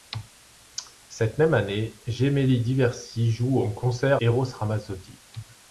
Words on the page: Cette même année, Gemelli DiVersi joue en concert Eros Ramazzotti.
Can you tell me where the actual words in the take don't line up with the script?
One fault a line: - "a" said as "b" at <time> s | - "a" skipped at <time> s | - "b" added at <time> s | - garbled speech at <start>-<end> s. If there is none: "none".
none